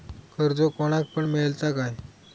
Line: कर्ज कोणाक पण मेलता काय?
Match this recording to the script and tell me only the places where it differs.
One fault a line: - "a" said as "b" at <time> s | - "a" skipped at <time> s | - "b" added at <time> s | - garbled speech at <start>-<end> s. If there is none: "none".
none